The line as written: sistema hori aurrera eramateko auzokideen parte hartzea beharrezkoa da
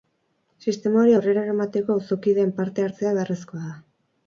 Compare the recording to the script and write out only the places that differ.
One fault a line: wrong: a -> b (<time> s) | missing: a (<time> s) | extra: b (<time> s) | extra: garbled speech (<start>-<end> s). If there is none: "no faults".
no faults